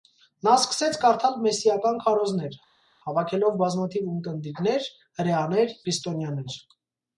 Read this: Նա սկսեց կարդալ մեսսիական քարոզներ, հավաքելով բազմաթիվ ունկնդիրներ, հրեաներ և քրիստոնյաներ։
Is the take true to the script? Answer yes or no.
no